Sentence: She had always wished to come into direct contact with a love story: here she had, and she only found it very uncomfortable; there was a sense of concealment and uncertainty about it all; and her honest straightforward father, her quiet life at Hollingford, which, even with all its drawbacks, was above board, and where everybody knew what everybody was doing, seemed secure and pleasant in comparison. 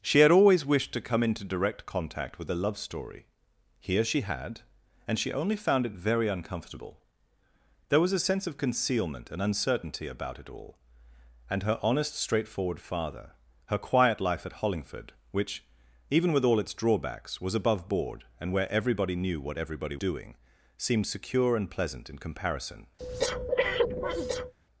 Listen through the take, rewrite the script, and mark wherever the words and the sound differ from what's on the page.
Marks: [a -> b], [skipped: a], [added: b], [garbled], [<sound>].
She had always wished to come into direct contact with a love story: here she had, and she only found it very uncomfortable; there was a sense of concealment and uncertainty about it all; and her honest straightforward father, her quiet life at Hollingford, which, even with all its drawbacks, was above board, and where everybody knew what everybody [skipped: was] doing, seemed secure and pleasant in comparison. [breath]